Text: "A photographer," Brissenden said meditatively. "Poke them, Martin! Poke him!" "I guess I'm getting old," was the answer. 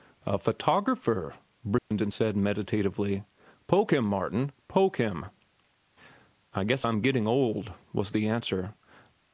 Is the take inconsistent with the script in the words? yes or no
yes